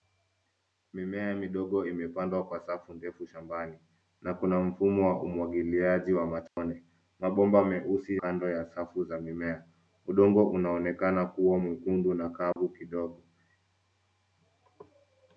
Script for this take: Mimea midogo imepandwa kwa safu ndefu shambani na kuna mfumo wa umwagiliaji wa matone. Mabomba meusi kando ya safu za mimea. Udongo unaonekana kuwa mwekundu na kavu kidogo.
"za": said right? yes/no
yes